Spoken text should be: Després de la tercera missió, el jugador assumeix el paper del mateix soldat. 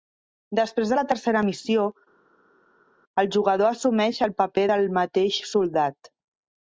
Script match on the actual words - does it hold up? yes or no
yes